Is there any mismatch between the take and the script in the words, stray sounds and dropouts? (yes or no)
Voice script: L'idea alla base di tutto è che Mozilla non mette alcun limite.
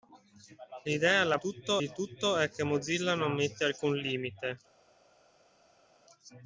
yes